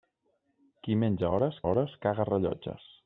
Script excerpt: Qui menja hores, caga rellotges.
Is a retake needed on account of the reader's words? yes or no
yes